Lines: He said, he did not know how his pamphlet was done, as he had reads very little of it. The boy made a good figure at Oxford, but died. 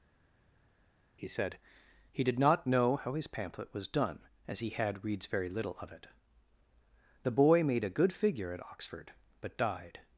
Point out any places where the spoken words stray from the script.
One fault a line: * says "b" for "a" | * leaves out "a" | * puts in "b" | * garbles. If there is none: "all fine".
all fine